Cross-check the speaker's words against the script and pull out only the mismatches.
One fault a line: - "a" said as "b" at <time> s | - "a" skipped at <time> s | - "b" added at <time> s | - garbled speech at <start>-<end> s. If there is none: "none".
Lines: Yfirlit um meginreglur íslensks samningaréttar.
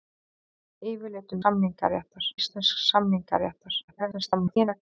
- "meginreglur" said as "samningaréttar" at 1.4 s
- garbled speech at 3.9-4.8 s